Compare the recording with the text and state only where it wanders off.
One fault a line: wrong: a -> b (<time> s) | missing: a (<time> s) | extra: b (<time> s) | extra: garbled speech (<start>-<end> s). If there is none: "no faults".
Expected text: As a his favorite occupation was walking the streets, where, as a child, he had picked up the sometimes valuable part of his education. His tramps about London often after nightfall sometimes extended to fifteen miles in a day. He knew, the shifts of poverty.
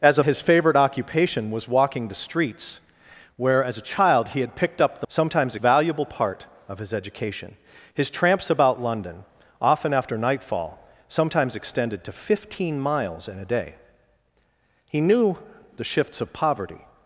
no faults